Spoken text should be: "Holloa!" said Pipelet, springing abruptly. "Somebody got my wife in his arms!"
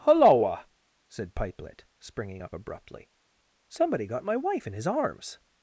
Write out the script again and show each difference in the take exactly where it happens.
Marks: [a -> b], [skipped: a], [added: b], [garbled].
"Holloa!" said Pipelet, springing [added: up] abruptly. "Somebody got my wife in his arms!"